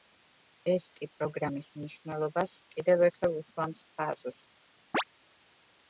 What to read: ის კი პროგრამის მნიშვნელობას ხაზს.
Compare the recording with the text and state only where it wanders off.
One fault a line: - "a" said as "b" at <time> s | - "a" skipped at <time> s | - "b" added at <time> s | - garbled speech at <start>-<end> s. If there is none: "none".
- "ის" said as "ეს" at 0.7 s
- "კიდევ ერთხელ უსვამს" added at 2.8 s